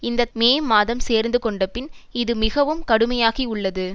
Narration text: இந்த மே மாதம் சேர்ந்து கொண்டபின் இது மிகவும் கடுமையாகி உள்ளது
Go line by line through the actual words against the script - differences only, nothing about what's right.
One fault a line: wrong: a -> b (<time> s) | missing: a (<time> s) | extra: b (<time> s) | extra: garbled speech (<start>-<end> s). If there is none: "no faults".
no faults